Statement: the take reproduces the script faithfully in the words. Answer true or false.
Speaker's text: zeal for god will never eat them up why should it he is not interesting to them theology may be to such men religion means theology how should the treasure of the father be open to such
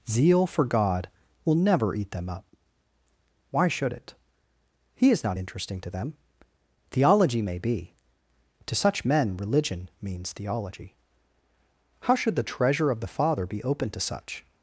true